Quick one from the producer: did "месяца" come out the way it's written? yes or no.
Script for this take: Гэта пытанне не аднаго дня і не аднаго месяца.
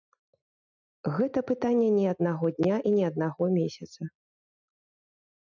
yes